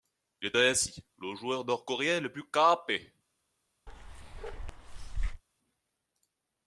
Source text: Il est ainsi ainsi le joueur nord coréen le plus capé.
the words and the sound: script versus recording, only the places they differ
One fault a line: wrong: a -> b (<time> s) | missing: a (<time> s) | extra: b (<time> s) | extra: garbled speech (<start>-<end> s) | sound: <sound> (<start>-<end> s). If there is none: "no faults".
missing: ainsi (1.0 s)
sound: bark (3.9-5.4 s)